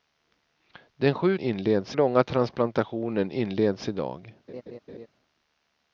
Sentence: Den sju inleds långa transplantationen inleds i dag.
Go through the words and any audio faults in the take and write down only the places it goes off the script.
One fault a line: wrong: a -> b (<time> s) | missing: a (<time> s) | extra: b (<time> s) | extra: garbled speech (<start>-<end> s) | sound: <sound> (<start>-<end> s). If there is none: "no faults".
sound: laugh (4.5-5.1 s)